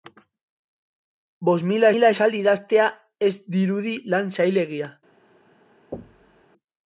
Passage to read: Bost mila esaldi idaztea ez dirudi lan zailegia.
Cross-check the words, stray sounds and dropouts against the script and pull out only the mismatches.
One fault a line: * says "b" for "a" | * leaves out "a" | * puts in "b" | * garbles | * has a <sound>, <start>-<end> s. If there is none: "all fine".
* puts in "mila"
* has a thud, 5.9-6.5 s